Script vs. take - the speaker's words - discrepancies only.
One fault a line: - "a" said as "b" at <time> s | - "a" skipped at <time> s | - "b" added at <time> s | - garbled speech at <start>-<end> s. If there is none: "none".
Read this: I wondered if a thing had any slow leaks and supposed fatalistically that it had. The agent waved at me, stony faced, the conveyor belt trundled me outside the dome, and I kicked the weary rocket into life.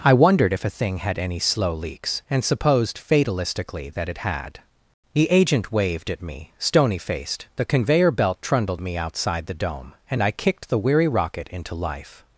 none